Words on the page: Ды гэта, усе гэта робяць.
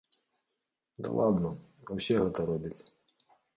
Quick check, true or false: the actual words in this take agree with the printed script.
false